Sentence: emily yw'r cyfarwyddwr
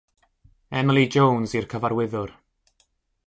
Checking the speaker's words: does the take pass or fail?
fail